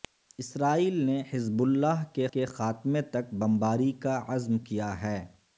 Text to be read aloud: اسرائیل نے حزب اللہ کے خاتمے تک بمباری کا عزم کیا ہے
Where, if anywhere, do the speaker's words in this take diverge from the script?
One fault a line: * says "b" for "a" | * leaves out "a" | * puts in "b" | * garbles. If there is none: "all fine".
* puts in "کے"